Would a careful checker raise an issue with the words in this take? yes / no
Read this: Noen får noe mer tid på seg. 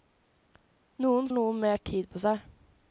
yes